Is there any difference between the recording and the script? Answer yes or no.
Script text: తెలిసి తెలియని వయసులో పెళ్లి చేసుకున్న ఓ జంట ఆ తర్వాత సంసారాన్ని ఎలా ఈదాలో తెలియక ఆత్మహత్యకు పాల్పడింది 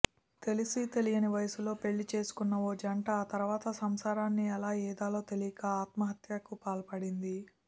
no